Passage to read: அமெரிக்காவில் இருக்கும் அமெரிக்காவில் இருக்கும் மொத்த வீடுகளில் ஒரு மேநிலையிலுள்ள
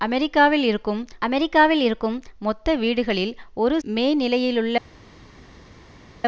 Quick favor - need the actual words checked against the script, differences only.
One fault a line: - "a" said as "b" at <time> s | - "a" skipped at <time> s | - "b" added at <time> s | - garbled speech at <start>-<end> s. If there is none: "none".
none